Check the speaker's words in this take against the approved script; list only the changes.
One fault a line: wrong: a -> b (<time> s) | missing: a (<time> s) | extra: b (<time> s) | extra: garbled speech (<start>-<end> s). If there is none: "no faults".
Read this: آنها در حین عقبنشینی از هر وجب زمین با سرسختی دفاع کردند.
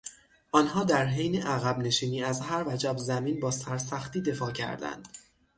no faults